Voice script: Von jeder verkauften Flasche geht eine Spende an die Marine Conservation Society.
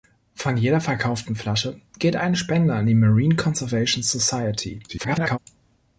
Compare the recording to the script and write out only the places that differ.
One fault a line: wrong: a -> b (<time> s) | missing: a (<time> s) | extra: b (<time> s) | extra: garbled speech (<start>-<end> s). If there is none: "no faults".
extra: garbled speech (4.9-5.4 s)